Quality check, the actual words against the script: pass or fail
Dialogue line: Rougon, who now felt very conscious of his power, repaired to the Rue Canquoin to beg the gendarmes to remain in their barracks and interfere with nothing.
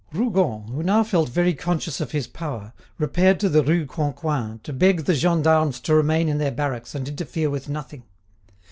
pass